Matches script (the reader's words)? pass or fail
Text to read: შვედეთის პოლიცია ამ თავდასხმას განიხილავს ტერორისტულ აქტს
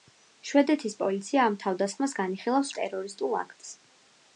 pass